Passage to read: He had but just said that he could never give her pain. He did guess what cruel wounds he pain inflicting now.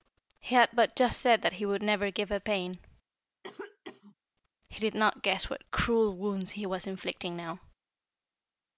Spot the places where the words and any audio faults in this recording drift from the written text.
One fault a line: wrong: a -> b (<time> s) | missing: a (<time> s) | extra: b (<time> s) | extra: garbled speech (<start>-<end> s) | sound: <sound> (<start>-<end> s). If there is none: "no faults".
wrong: could -> would (1.7 s)
sound: cough (3.4-4.1 s)
extra: not (4.9 s)
wrong: pain -> was (6.7 s)